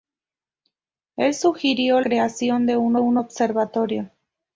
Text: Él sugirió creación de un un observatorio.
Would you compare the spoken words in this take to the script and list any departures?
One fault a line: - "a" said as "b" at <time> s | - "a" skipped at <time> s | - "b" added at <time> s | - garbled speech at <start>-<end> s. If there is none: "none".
none